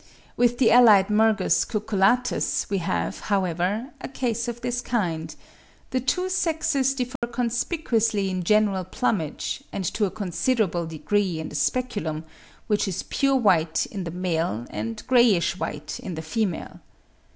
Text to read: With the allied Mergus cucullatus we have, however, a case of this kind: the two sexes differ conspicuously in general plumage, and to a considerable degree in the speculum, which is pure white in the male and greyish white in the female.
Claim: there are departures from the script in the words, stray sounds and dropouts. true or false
true